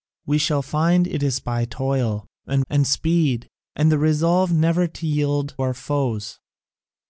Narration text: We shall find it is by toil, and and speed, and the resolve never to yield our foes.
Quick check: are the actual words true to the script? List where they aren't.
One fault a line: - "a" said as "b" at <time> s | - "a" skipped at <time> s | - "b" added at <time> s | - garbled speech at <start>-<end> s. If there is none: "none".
none